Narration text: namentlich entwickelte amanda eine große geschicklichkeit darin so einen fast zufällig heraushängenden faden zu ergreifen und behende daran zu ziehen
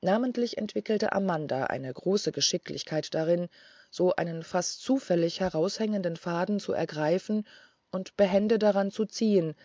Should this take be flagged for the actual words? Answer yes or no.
no